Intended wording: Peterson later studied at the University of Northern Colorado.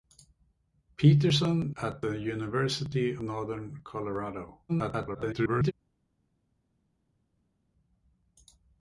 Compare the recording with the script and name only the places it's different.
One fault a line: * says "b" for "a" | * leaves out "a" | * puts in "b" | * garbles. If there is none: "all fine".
* leaves out "later studied"
* leaves out "of"
* garbles